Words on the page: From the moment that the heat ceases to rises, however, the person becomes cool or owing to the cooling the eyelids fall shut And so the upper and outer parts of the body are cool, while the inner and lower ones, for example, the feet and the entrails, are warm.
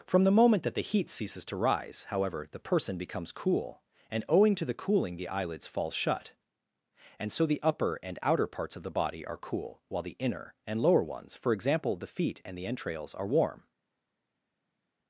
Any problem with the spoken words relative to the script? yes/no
yes